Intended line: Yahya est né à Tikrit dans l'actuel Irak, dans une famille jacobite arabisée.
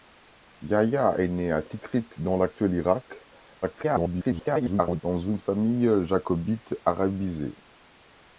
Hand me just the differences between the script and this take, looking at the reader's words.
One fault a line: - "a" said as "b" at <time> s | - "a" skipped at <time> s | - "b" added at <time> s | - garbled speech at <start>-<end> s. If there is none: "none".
- garbled speech at 3.6-5.0 s